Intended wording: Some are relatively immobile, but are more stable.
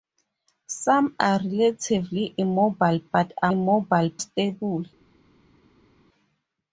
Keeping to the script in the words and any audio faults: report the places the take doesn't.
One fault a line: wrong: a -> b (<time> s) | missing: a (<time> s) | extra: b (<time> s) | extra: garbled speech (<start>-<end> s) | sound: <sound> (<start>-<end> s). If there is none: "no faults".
wrong: more -> immobile (3.5 s)